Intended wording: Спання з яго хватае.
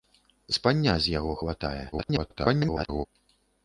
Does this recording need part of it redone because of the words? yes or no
yes